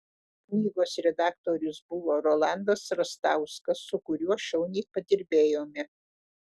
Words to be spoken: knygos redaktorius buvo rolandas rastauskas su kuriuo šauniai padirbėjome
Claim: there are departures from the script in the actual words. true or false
false